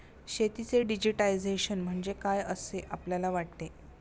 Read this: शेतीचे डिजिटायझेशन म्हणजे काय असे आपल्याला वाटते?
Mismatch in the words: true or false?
false